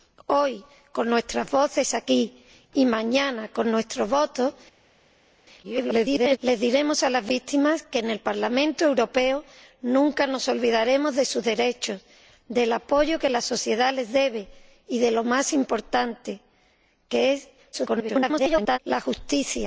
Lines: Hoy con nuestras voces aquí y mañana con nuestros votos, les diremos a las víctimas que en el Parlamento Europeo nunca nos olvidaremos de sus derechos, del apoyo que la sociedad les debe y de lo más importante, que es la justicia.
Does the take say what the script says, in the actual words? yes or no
no